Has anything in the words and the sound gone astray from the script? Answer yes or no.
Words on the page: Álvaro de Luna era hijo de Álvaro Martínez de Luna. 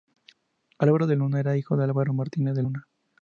no